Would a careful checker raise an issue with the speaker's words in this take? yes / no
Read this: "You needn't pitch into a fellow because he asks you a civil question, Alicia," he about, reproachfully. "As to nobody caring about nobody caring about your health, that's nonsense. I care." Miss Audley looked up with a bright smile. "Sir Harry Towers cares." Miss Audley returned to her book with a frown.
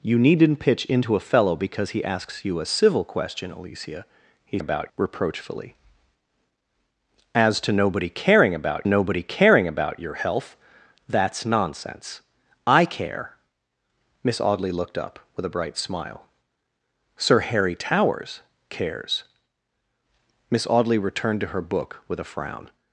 no